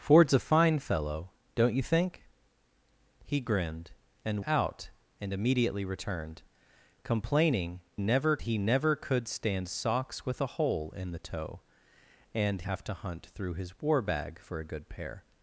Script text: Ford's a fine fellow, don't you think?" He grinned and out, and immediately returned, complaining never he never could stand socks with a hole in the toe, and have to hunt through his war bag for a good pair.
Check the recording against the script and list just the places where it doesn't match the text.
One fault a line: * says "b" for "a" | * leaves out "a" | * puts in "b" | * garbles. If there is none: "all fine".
all fine